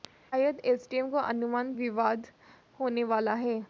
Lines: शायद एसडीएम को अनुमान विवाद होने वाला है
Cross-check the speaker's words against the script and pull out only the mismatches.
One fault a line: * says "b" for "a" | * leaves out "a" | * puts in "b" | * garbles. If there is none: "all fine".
all fine